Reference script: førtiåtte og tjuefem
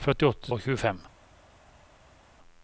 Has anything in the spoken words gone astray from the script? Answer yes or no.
no